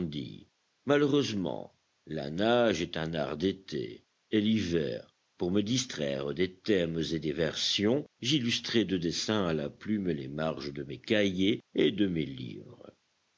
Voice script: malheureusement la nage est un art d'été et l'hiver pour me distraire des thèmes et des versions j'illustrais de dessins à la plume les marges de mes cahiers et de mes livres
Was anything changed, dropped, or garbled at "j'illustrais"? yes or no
no